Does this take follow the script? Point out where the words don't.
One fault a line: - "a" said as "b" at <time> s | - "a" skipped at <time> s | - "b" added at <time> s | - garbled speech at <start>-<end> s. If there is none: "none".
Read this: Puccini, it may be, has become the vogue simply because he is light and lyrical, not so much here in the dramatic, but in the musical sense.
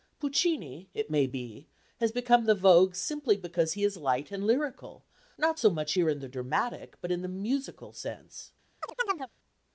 none